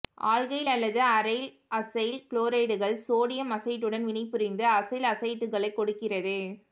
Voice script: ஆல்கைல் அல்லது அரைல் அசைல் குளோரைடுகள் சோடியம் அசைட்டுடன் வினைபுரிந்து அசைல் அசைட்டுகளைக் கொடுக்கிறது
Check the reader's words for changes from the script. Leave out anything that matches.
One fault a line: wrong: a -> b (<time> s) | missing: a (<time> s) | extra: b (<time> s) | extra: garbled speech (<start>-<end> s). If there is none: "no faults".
no faults